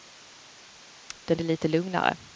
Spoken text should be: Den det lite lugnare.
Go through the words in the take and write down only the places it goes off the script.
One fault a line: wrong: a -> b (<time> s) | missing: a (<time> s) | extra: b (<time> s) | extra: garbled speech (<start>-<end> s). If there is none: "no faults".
no faults